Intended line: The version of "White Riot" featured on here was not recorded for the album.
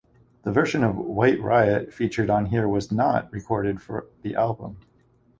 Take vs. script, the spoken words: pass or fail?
pass